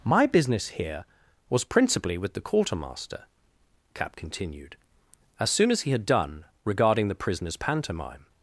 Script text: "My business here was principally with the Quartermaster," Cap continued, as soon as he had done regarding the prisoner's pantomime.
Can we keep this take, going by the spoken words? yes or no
yes